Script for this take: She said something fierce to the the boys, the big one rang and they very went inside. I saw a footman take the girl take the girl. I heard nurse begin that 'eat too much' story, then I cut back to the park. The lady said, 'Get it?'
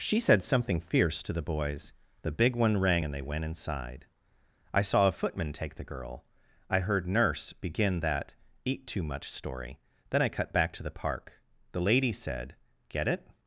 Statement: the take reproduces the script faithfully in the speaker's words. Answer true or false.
false